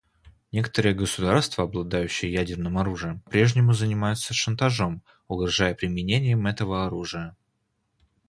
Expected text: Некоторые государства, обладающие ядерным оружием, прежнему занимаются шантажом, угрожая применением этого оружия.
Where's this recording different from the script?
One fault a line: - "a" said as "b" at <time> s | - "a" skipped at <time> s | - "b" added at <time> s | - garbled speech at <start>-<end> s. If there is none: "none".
none